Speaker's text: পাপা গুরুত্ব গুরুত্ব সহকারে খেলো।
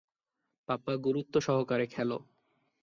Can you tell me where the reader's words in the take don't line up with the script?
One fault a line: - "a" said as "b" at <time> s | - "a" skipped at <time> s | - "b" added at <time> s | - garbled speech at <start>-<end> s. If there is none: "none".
- "গুরুত্ব" skipped at 1.3 s